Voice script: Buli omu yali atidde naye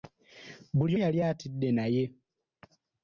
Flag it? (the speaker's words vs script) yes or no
yes